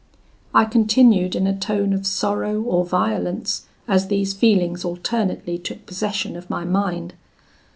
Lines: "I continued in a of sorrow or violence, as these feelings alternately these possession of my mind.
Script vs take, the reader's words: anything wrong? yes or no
yes